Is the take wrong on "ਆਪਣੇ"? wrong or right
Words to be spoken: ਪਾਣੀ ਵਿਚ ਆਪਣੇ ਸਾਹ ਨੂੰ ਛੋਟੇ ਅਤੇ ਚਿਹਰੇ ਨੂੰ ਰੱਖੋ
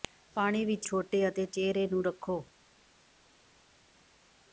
wrong